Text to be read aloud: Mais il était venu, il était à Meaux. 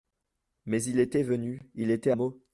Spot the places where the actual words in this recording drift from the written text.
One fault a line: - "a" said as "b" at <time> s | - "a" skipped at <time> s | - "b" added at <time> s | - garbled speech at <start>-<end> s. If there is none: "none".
- "à" skipped at 2.1 s